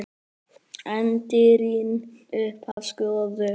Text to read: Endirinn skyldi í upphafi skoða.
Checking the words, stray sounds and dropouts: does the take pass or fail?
fail